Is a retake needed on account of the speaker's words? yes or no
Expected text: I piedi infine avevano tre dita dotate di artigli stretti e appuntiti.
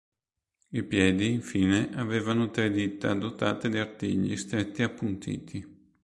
no